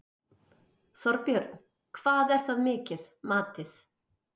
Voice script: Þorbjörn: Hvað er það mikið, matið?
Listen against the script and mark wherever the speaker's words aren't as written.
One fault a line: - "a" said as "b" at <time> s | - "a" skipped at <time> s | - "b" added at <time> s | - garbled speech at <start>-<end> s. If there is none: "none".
none